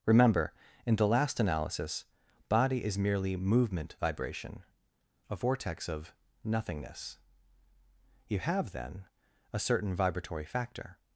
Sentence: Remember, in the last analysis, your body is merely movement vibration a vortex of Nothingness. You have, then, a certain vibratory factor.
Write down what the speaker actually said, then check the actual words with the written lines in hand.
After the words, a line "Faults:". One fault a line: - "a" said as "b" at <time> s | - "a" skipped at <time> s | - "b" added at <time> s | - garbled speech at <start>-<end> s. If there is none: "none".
Remember, in the last analysis, body is merely movement vibration a vortex of Nothingness. You have, then, a certain vibratory factor.
Faults:
- "your" skipped at 2.0 s